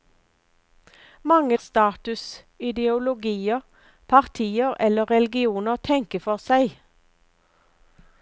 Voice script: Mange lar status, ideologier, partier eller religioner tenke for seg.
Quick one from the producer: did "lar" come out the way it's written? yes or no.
no